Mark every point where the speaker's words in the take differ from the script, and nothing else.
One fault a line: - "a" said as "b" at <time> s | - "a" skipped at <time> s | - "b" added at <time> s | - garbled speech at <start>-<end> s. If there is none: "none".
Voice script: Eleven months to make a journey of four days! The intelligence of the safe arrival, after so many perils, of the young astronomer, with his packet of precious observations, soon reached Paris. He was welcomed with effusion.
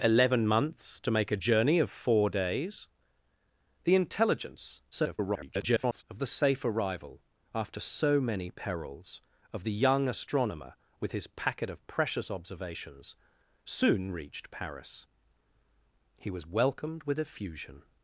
- garbled speech at 4.9-6.0 s